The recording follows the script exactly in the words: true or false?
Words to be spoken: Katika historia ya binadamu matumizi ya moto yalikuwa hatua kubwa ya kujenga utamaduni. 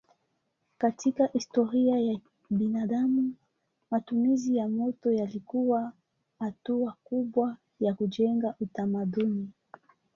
true